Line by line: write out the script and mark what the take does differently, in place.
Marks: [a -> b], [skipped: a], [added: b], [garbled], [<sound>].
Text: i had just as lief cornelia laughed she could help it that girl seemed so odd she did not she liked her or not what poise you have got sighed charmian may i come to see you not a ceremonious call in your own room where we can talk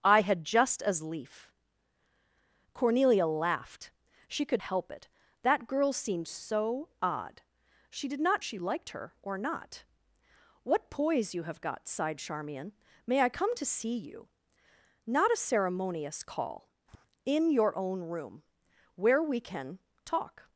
i had just as lief cornelia laughed she could help it that girl seemed so odd she did not she liked her or not what poise you have got sighed charmian may i come to see you not a ceremonious call [tap] in your own room where we can talk